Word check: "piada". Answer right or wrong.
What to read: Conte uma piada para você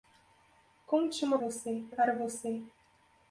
wrong